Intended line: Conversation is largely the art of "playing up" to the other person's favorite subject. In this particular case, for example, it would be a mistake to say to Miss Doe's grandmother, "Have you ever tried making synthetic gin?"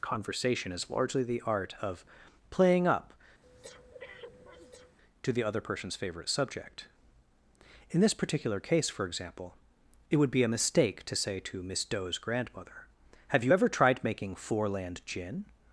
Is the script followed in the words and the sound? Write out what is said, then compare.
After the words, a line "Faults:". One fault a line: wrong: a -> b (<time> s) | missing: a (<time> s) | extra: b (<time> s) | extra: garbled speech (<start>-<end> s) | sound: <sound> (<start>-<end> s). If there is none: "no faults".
Conversation is largely the art of "playing up" to the other person's favorite subject. In this particular case, for example, it would be a mistake to say to Miss Doe's grandmother, "Have you ever tried making foreland gin?"
Faults:
sound: breath (3.4-5.0 s)
wrong: synthetic -> foreland (14.4 s)